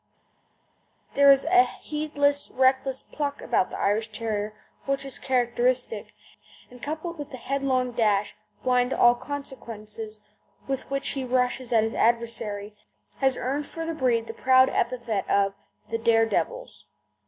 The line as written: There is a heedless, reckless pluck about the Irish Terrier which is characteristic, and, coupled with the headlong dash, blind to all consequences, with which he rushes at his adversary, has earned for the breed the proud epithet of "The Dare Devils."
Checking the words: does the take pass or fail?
pass